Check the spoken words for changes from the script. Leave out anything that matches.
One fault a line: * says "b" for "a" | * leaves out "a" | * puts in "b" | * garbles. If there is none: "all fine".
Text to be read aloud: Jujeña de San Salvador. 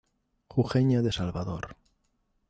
* leaves out "San"